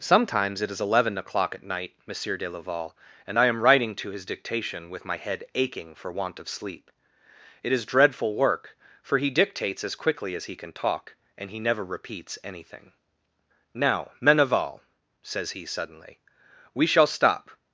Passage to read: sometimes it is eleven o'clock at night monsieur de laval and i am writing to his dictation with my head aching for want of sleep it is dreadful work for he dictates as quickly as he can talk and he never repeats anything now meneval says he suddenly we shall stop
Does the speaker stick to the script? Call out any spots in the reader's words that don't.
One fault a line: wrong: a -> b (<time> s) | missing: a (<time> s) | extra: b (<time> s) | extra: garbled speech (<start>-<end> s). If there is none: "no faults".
no faults